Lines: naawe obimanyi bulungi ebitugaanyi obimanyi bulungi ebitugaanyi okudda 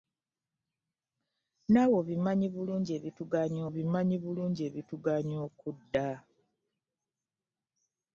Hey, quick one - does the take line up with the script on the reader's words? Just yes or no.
yes